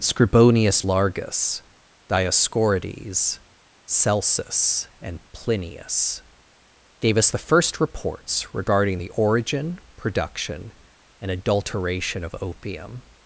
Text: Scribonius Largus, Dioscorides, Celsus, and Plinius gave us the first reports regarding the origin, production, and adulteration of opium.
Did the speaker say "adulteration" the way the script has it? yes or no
yes